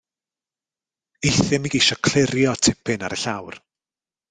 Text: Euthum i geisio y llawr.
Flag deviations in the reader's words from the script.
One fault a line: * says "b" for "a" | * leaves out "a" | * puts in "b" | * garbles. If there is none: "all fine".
* puts in "clirio tipyn ar"